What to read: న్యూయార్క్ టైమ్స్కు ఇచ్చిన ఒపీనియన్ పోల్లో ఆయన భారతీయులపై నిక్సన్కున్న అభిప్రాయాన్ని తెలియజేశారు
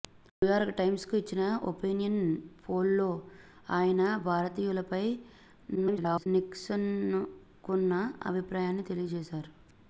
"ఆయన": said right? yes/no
yes